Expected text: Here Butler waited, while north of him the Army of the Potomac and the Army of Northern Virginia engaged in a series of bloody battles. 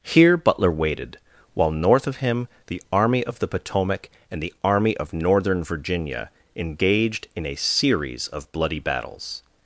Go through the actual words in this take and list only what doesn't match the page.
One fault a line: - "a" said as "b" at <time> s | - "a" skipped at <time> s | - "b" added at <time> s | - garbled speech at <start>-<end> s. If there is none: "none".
none